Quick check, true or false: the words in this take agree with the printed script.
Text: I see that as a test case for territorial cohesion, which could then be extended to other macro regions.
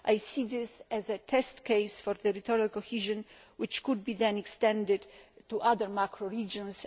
false